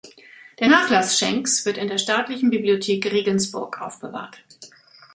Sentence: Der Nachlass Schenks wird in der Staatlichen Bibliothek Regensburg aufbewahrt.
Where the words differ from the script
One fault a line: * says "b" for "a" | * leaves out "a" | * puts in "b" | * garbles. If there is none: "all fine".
all fine